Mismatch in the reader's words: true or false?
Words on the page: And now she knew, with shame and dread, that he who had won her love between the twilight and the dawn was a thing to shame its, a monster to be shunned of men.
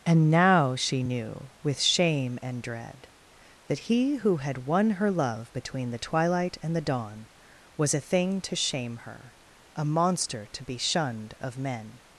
true